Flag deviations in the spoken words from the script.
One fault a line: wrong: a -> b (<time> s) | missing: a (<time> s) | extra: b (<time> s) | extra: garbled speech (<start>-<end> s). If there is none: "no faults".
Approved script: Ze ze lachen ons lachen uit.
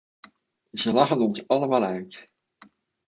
missing: ze (0.9 s)
wrong: lachen -> allemaal (1.5 s)